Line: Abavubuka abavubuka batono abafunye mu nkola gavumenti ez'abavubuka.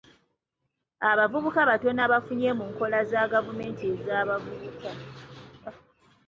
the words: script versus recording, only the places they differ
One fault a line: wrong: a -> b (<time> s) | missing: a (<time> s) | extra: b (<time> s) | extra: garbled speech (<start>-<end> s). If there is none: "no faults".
missing: abavubuka (1.6 s)
extra: za (3.1 s)